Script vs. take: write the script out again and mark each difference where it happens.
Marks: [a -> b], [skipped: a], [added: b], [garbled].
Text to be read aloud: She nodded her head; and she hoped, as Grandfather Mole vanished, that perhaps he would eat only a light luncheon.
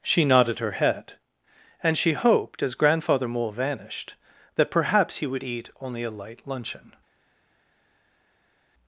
She nodded her head; and she hoped, as Grandfather Mole vanished, that perhaps he would eat only a light luncheon.